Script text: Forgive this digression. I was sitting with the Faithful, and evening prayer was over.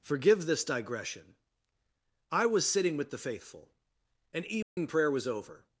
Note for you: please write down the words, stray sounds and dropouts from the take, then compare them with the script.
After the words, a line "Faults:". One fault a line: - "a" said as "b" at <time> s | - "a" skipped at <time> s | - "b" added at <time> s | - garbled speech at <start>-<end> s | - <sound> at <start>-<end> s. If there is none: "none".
Forgive this digression. I was sitting with the Faithful, and evening prayer was over.
Faults:
- dropout at 4.6-4.8 s